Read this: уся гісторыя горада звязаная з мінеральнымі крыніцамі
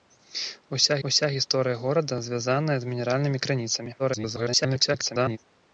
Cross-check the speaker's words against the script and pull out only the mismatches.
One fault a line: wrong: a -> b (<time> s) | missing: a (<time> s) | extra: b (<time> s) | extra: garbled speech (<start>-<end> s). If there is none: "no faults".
extra: уся (1.1 s)
extra: garbled speech (4.0-5.4 s)